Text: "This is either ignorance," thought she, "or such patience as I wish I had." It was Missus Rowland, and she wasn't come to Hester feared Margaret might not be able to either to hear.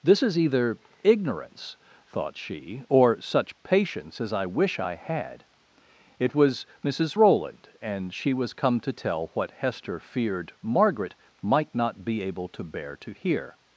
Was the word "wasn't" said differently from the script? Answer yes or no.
yes